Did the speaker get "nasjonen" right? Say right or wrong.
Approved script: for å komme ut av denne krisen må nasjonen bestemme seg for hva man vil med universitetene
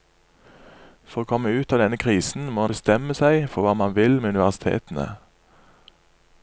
wrong